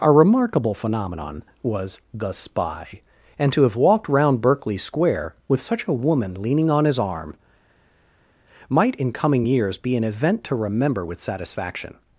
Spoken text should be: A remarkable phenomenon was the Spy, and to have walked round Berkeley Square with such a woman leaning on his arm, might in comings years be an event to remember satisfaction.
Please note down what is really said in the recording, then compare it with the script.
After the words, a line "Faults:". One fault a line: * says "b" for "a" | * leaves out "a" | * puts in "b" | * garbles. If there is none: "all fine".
A remarkable phenomenon was the Spy, and to have walked round Berkeley Square with such a woman leaning on his arm, might in coming years be an event to remember with satisfaction.
Faults:
* says "coming" for "comings"
* puts in "with"